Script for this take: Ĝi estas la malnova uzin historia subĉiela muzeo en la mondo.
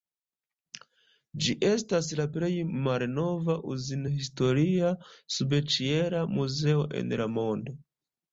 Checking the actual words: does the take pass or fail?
fail